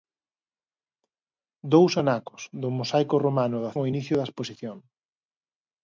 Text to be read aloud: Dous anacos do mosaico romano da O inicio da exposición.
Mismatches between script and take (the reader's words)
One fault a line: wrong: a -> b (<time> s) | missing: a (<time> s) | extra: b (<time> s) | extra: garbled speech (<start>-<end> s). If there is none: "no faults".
no faults